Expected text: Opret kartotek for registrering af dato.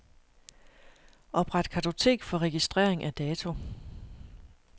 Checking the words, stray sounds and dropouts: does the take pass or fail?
pass